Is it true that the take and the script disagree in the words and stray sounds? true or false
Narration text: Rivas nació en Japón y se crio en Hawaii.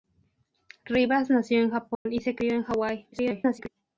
true